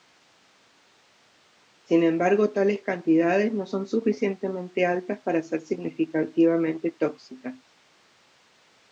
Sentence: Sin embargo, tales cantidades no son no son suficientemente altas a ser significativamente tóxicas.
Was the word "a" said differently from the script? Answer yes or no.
yes